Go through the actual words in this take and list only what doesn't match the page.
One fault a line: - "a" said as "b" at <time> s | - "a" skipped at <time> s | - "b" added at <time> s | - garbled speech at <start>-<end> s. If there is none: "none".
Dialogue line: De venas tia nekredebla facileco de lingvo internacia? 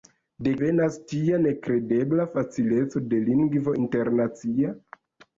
none